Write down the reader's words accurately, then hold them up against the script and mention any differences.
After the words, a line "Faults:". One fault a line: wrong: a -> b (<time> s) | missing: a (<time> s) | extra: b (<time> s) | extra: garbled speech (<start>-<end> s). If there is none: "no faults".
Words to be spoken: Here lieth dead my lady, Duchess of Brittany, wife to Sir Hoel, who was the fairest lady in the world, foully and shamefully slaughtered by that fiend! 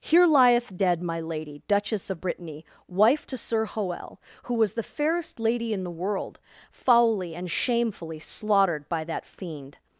Here lieth dead my lady, Duchess of Brittany, wife to Sir Hoel, who was the fairest lady in the world, foully and shamefully slaughtered by that fiend!
Faults:
no faults